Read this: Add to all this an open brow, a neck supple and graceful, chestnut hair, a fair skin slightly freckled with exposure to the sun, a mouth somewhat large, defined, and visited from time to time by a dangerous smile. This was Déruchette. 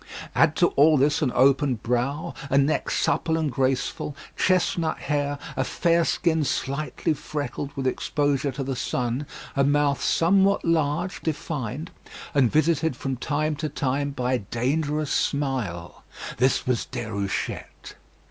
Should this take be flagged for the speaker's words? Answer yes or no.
no